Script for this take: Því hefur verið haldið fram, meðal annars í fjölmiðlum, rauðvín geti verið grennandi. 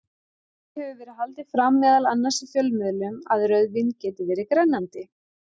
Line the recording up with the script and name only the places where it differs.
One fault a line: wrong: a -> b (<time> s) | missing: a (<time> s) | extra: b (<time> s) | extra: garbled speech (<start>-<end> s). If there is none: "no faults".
extra: að (3.4 s)